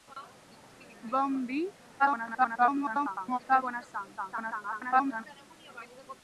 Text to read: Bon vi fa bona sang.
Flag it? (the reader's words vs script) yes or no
yes